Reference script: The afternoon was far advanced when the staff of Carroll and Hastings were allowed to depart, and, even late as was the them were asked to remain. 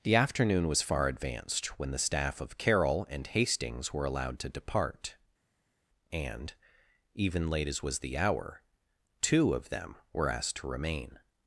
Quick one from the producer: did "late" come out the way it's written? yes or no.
yes